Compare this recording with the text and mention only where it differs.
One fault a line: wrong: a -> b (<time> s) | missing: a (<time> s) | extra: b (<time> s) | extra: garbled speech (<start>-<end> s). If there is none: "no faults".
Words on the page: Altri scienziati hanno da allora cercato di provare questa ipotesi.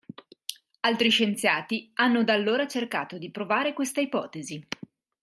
no faults